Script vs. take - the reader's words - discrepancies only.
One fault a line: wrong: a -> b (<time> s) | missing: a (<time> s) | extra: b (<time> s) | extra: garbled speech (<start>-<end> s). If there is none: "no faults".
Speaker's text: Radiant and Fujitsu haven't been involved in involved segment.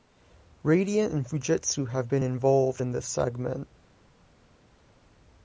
wrong: haven't -> have (1.9 s)
wrong: involved -> this (2.9 s)